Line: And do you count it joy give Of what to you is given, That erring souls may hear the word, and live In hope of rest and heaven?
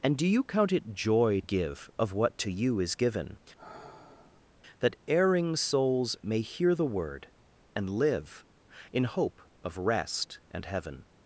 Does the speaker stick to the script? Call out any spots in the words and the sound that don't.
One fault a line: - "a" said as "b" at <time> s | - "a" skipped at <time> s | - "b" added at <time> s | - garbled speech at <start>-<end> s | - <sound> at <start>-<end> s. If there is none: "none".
- sigh at 3.6-4.5 s